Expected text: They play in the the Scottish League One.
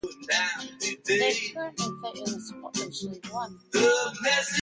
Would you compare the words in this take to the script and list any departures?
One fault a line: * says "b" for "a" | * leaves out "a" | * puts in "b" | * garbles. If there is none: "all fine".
* puts in "currently"
* leaves out "the"